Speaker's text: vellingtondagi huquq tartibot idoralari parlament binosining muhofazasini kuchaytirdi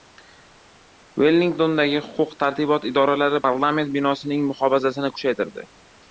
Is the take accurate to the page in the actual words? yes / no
yes